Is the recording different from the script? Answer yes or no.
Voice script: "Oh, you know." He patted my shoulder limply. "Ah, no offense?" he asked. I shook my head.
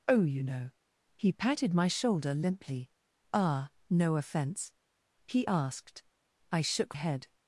yes